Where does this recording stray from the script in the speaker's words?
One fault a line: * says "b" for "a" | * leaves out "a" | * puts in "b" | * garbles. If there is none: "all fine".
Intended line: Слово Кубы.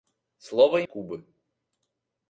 all fine